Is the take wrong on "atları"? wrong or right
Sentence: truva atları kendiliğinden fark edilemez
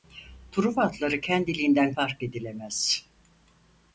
right